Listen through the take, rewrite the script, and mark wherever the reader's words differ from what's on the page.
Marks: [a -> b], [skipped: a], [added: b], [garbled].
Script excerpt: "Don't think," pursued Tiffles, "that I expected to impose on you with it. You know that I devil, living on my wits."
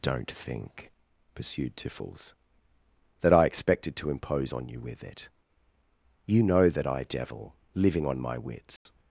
"Don't think," pursued Tiffles, "that I expected to impose on you with it. You know that I devil, living on my wits."